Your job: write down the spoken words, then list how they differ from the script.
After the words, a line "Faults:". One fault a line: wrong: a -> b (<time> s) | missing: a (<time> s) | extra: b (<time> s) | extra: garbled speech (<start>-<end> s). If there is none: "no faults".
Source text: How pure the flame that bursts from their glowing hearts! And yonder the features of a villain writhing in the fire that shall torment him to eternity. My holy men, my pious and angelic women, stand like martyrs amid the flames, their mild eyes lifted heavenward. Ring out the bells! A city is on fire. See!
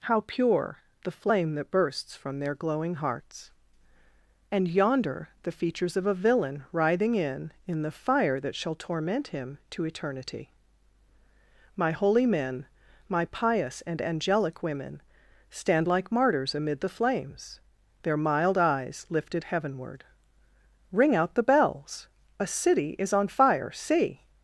How pure the flame that bursts from their glowing hearts! And yonder the features of a villain writhing in in the fire that shall torment him to eternity. My holy men, my pious and angelic women, stand like martyrs amid the flames, their mild eyes lifted heavenward. Ring out the bells! A city is on fire. See!
Faults:
extra: in (7.7 s)